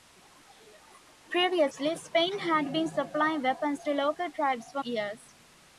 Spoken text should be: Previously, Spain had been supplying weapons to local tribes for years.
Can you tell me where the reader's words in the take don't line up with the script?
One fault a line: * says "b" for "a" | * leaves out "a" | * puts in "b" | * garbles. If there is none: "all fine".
all fine